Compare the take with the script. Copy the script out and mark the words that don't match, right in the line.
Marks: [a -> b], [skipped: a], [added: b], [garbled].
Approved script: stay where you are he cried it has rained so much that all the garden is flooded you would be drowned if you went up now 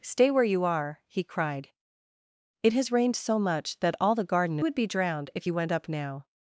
stay where you are he cried it has rained so much that all the garden [skipped: is flooded you] would be drowned if you went up now